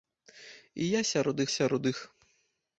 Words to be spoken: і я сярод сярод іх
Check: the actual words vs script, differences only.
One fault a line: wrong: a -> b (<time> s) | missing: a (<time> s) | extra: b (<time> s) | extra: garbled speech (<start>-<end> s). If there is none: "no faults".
no faults